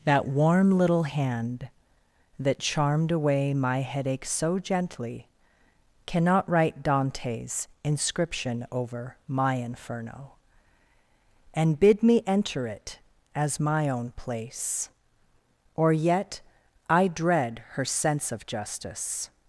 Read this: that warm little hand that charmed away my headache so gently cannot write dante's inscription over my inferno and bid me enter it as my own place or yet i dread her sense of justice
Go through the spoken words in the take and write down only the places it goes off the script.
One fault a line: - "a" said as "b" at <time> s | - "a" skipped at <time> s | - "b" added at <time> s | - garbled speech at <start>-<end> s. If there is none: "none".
none